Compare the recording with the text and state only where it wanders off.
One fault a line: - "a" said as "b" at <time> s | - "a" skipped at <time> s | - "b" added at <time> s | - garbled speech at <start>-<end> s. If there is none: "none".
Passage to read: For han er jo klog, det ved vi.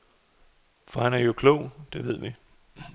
none